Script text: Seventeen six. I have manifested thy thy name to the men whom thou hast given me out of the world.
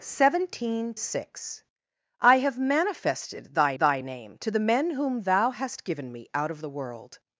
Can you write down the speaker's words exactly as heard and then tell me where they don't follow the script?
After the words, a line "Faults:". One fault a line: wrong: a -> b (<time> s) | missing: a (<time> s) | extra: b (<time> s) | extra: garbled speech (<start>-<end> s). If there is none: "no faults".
Seventeen six. I have manifested thy thy name to the men whom thou hast given me out of the world.
Faults:
no faults